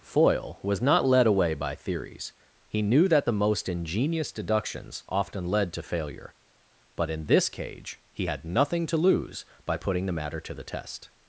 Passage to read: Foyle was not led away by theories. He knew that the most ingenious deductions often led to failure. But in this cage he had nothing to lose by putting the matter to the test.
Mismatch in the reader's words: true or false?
false